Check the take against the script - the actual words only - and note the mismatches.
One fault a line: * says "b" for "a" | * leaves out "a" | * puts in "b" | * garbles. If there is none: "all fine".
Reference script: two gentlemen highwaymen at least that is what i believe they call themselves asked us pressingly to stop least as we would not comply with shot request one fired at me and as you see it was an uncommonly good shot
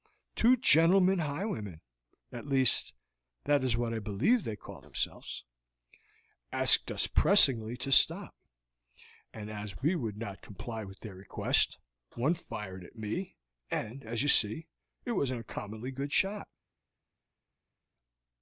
* says "and" for "least"
* says "their" for "shot"